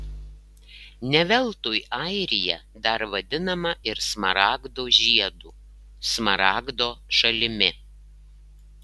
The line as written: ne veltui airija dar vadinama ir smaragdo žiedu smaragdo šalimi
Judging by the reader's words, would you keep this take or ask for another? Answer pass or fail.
pass